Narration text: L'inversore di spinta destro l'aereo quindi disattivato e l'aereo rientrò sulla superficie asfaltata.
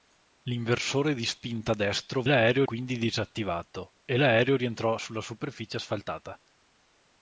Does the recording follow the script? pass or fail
pass